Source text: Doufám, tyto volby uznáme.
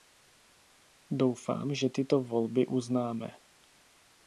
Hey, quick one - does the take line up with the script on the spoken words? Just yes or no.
no